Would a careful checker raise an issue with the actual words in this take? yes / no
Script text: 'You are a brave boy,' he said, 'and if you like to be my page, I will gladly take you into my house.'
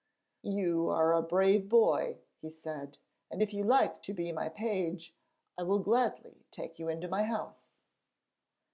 no